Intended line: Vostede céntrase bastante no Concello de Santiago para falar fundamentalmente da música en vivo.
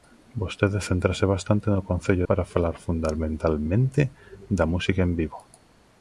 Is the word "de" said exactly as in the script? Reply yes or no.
no